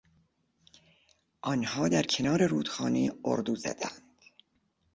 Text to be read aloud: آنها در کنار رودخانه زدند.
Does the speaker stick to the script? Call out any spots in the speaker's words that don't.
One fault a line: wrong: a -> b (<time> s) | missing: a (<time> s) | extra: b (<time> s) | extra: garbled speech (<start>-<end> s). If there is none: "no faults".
extra: اردو (3.2 s)